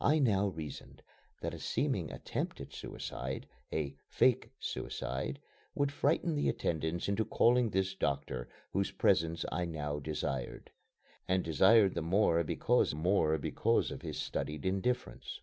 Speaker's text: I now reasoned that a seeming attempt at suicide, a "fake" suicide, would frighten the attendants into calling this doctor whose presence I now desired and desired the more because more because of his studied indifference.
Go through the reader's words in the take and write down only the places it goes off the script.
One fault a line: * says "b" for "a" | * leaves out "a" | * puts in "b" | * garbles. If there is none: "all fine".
all fine